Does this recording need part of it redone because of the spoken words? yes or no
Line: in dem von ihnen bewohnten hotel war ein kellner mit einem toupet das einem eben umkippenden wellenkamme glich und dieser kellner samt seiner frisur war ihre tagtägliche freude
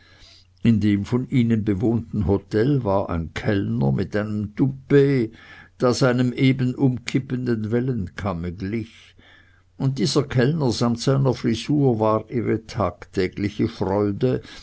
no